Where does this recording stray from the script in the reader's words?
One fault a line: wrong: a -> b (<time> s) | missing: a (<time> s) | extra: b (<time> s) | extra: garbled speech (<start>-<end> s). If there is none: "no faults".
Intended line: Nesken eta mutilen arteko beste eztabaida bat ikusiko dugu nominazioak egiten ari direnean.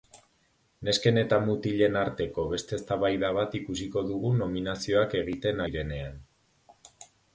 missing: ari (5.6 s)